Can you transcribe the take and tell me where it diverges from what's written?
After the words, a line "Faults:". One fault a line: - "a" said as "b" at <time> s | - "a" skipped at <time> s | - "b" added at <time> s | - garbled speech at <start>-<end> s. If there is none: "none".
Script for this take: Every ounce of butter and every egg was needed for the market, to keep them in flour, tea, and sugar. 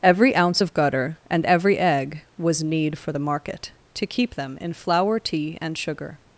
Every ounce of gutter and every egg was need for the market, to keep them in flour, tea, and sugar.
Faults:
- "butter" said as "gutter" at 0.7 s
- "needed" said as "need" at 2.6 s